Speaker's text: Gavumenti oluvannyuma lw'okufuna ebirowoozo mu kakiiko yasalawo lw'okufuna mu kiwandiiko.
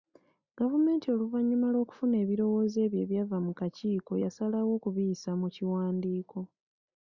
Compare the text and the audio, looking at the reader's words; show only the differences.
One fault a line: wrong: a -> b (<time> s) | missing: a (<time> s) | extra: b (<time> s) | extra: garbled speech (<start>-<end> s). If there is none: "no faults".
extra: ebyo ebyava (2.9 s)
wrong: lw'okufuna -> okubiyisa (4.8 s)